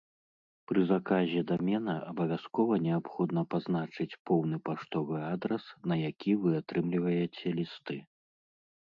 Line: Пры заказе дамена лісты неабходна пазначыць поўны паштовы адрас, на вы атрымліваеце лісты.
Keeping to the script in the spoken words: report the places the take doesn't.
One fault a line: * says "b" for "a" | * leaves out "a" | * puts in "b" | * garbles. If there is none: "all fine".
* says "абавязкова" for "лісты"
* puts in "які"